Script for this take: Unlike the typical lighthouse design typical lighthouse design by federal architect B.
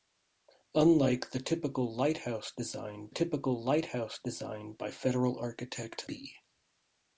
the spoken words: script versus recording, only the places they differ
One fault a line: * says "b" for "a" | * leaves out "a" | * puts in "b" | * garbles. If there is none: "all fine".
all fine